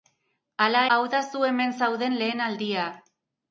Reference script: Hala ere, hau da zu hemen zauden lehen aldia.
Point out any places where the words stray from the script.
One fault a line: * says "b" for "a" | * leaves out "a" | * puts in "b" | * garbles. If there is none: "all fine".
* leaves out "ere"